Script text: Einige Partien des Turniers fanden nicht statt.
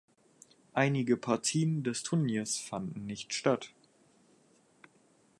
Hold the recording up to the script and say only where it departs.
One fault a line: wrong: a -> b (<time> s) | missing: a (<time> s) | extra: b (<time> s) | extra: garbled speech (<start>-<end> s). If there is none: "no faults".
no faults